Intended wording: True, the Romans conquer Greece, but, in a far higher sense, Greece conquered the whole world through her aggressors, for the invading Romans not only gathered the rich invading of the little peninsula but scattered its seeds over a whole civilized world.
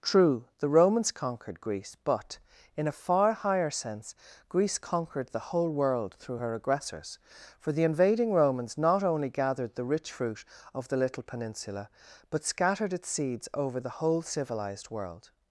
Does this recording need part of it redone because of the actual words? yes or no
yes